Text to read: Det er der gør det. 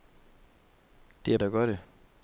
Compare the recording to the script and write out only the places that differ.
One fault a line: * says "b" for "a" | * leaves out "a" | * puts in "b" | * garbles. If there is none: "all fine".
all fine